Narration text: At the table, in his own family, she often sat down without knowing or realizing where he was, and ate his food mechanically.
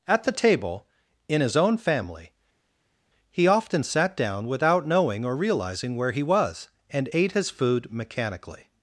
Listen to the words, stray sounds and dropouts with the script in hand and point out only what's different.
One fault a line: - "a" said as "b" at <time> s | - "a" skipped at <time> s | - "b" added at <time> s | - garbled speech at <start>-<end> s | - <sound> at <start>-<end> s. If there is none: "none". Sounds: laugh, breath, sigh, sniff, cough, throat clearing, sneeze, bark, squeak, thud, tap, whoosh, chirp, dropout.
- "she" said as "he" at 3.3 s